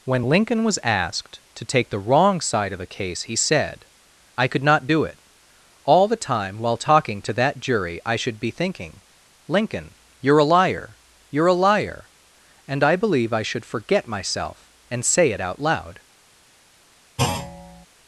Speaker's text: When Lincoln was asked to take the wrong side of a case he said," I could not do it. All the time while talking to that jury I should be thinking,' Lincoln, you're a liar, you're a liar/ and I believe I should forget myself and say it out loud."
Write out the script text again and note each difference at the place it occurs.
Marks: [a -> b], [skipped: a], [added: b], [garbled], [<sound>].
When Lincoln was asked to take the wrong side of a case he said," I could not do it. All the time while talking to that jury I should be thinking,' Lincoln, you're a liar, you're a liar/ and I believe I should forget myself and say it out loud." [thud]